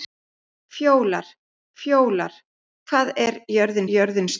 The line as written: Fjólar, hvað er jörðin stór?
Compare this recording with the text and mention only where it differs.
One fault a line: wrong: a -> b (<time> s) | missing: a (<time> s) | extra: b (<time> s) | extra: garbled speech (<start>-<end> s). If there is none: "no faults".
extra: fjólar (1.8 s)
extra: jörðin (4.0 s)